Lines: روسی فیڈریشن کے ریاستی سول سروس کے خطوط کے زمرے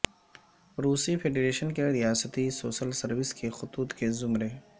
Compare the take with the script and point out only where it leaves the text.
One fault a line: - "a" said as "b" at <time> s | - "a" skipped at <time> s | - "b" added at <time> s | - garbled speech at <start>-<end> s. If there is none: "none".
none